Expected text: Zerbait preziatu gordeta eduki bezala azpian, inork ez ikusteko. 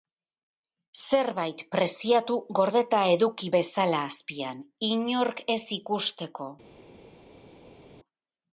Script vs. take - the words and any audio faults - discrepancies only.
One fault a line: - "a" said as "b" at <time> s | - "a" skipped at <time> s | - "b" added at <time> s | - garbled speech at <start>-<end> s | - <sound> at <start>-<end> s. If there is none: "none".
none